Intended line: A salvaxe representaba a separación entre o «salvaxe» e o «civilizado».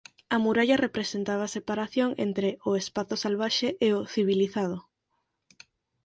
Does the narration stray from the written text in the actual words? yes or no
yes